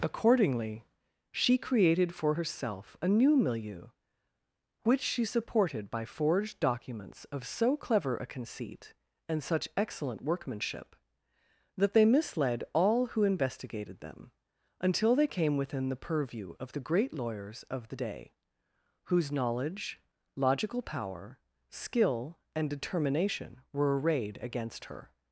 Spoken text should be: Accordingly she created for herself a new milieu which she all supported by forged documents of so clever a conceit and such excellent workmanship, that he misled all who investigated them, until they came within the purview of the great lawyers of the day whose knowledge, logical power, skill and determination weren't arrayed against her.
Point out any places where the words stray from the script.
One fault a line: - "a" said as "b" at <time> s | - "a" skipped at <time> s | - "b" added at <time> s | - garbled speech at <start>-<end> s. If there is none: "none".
- "all" skipped at 5.3 s
- "he" said as "they" at 11.9 s
- "weren't" said as "were" at 23.7 s